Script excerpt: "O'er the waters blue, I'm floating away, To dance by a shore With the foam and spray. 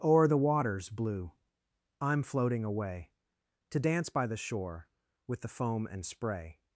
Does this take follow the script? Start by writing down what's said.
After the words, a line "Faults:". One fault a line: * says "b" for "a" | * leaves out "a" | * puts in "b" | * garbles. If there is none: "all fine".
"O'er the waters blue, I'm floating away, To dance by the shore With the foam and spray.
Faults:
* says "the" for "a"